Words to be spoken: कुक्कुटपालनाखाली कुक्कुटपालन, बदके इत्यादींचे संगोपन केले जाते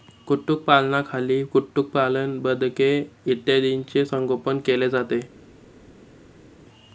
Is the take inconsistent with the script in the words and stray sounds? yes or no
no